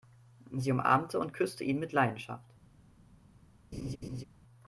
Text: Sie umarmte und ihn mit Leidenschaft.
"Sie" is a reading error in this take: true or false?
false